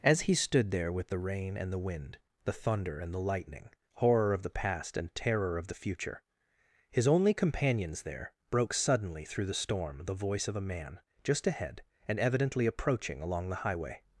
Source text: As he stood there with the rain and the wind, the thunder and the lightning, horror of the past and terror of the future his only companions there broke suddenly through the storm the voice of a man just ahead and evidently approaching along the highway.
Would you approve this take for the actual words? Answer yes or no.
yes